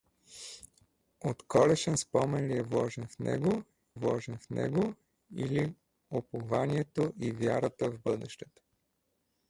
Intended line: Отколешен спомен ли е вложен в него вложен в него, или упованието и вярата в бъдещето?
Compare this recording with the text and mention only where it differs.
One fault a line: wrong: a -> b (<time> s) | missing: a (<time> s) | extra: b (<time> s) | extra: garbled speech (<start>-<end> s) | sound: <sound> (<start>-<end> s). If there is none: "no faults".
no faults